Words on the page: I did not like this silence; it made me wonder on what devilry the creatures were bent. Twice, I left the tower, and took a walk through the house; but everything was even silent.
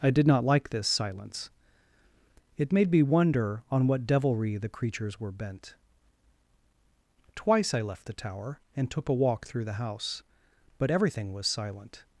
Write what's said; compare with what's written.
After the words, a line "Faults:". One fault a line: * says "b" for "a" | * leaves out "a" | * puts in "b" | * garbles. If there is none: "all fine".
I did not like this silence; it made me wonder on what devilry the creatures were bent. Twice, I left the tower, and took a walk through the house; but everything was silent.
Faults:
* leaves out "even"